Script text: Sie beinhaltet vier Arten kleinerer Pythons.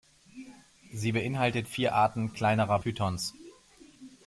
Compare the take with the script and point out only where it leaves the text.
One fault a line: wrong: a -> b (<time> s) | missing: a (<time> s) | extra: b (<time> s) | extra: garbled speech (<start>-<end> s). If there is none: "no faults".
no faults